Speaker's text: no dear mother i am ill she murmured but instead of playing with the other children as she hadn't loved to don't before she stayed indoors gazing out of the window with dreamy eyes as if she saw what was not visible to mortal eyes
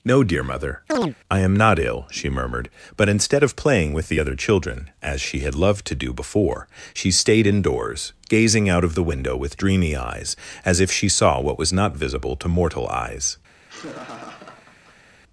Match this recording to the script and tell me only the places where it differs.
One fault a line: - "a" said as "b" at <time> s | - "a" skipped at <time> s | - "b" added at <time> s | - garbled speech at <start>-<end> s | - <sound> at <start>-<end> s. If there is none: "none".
- chirp at 0.9-1.2 s
- "not" added at 1.6 s
- "hadn't" said as "had" at 5.4 s
- "don't" said as "do" at 6.0 s
- laugh at 13.6-15.2 s